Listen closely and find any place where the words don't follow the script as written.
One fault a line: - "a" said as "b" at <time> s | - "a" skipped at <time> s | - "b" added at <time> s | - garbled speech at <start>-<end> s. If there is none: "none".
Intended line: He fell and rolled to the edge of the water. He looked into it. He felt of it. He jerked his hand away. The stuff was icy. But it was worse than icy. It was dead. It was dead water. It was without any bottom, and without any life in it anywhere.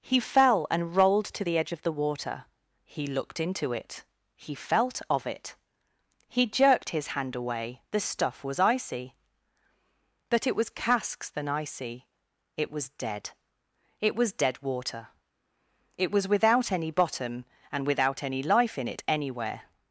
- "worse" said as "casks" at 10.7 s